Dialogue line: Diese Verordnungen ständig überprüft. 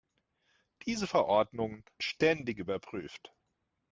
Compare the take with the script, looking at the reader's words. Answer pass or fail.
pass